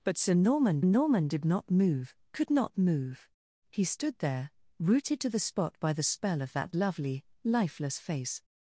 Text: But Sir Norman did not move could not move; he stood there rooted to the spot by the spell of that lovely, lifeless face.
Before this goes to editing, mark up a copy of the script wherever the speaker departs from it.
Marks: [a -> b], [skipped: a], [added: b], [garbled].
But Sir Norman [added: Norman] did not move could not move; he stood there rooted to the spot by the spell of that lovely, lifeless face.